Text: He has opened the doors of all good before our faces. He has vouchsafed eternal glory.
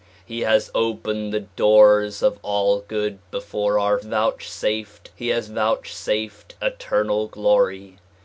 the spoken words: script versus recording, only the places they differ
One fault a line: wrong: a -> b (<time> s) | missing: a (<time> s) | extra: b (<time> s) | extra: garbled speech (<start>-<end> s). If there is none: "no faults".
wrong: faces -> vouchsafed (4.0 s)